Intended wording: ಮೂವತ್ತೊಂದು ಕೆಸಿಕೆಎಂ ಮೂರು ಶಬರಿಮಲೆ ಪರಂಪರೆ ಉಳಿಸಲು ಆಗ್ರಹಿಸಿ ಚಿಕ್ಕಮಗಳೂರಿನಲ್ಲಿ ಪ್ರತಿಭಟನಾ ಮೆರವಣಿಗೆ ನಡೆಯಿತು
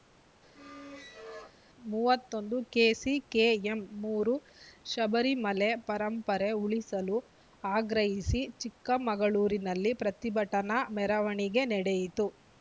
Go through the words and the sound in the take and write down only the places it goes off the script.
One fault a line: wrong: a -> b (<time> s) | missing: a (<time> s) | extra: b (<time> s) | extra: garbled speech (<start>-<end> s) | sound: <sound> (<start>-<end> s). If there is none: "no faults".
sound: squeak (0.5-1.6 s)